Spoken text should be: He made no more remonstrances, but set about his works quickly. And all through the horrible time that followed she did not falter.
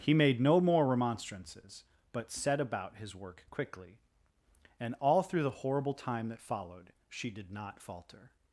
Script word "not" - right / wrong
right